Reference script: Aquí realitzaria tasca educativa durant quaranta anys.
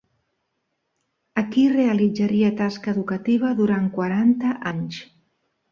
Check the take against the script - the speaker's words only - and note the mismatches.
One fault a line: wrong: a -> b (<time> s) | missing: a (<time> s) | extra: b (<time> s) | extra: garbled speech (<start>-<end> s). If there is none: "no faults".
no faults